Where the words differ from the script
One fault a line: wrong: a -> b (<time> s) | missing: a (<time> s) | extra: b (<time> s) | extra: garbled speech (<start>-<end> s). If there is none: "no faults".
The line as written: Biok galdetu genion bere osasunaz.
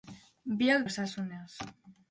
missing: galdetu genion bere (0.8 s)